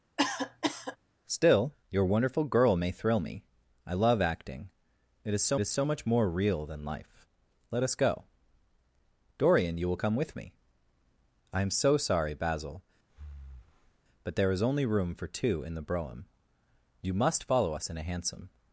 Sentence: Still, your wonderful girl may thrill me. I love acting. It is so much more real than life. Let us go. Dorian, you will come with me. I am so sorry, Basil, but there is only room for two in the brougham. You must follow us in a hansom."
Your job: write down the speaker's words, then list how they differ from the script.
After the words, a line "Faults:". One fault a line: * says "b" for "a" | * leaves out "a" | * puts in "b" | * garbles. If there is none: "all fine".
Still, your wonderful girl may thrill me. I love acting. It is so is so much more real than life. Let us go. Dorian, you will come with me. I am so sorry, Basil, but there is only room for two in the brougham. You must follow us in a hansom."
Faults:
* puts in "is so"